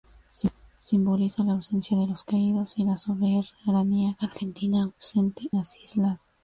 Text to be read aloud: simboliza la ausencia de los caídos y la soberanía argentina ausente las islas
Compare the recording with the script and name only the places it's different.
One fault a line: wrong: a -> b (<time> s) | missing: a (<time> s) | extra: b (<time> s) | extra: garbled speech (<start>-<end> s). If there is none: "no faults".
no faults